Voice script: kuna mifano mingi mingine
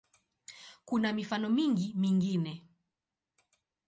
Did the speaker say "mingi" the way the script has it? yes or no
yes